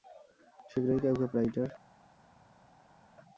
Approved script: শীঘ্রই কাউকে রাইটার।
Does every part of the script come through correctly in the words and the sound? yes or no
yes